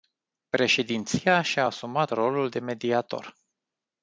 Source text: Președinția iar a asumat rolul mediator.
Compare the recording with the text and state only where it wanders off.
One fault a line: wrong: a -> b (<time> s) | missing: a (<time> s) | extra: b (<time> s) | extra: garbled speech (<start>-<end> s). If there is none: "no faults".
wrong: iar -> și (1.4 s)
extra: de (2.5 s)